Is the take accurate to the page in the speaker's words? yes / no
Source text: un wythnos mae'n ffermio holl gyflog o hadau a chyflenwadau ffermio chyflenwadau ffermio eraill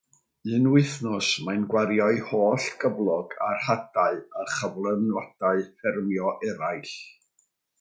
no